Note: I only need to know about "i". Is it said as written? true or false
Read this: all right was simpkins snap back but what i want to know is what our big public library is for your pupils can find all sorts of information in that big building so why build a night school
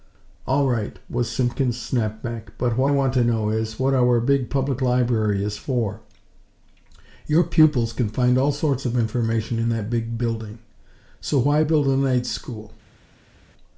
false